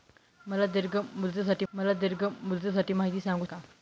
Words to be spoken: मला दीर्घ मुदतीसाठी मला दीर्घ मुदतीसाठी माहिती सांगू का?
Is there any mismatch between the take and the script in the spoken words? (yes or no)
no